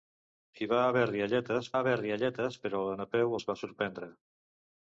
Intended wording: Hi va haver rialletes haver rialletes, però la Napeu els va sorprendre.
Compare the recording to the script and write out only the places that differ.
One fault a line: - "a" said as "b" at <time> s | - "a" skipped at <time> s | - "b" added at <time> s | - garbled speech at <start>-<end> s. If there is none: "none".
none